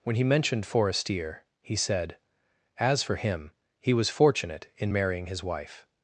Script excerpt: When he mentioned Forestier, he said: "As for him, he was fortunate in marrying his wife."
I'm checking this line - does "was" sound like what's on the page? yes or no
yes